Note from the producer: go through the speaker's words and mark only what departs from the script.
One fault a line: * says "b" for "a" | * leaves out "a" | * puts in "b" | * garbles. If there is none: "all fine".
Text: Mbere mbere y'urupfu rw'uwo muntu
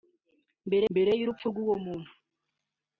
all fine